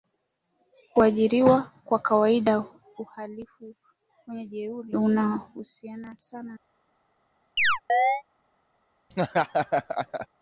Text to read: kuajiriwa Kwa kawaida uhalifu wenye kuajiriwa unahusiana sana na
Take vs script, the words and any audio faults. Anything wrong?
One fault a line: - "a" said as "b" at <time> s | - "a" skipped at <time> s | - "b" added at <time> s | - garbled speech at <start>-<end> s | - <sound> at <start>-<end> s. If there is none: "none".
- "kuajiriwa" said as "jeuri" at 4.5 s
- chirp at 7.6-8.2 s
- laugh at 9.1-10.3 s